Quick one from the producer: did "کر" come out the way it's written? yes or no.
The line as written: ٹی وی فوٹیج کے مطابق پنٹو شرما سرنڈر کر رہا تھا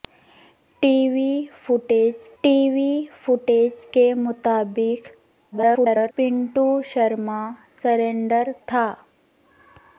no